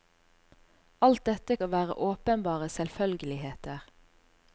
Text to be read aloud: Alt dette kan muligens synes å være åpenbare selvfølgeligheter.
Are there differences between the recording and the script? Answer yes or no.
yes